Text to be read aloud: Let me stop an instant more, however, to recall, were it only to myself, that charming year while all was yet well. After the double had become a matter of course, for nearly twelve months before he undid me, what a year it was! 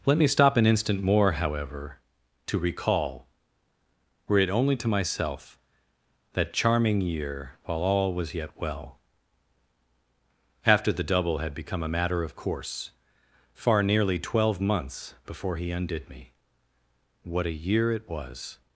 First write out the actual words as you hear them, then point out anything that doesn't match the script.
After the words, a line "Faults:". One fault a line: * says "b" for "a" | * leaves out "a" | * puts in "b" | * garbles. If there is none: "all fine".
Let me stop an instant more, however, to recall, were it only to myself, that charming year while all was yet well. After the double had become a matter of course, far nearly twelve months before he undid me, what a year it was!
Faults:
* says "far" for "for"